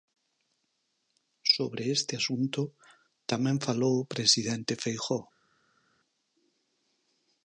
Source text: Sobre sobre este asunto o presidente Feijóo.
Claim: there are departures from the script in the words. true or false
true